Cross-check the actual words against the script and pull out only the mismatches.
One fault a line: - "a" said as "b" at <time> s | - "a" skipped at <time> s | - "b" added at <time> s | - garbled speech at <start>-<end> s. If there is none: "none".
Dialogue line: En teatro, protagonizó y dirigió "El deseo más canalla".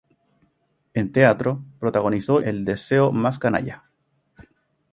- "y dirigió" skipped at 2.4 s